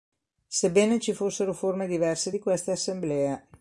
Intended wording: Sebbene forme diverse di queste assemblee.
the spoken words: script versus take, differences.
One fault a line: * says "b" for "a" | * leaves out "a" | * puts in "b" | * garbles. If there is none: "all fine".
* puts in "ci fossero"